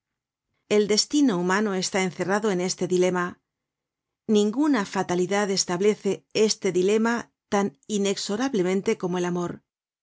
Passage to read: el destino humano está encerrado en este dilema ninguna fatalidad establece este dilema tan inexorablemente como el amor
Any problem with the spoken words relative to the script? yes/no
no